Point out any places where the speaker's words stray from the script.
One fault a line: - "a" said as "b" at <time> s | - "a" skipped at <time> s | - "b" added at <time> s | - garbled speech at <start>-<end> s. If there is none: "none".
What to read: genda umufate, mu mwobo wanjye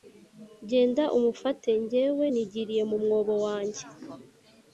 - "jyewe nigiriye" added at 1.9 s